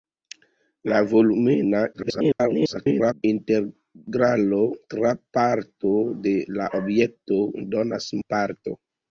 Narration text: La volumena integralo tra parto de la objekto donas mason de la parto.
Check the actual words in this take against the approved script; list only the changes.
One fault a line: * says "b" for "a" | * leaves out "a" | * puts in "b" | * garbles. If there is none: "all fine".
* garbles
* leaves out "mason de"